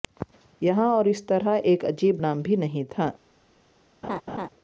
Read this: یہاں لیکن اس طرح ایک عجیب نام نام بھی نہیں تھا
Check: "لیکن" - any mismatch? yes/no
yes